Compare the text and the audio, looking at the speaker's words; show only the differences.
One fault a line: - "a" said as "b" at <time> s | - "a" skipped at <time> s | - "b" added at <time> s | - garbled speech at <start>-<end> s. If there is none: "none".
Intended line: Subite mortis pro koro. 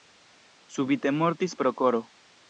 none